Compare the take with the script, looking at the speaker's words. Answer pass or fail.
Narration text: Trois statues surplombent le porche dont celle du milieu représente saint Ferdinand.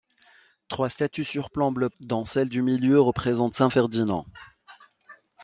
fail